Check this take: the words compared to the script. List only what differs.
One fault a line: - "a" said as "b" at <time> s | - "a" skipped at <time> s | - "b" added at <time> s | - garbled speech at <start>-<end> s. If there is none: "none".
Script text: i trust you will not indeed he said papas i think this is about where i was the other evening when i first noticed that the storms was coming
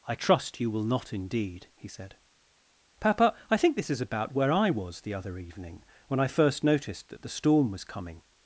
- "papas" said as "papa" at 3.0 s
- "storms" said as "storm" at 7.3 s